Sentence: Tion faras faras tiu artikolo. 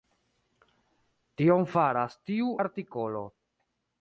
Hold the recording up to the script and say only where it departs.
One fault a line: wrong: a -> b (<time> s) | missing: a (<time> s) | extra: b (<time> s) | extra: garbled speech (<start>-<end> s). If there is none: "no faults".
missing: faras (2.2 s)